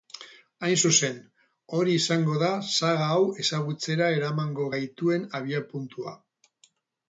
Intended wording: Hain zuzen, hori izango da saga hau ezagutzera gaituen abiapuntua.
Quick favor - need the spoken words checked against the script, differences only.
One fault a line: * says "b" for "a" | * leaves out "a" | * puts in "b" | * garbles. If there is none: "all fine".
* puts in "eramango"